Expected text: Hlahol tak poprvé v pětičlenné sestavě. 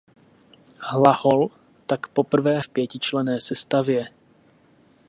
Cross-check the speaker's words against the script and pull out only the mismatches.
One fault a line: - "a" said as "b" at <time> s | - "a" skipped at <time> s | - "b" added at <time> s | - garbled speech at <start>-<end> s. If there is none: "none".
none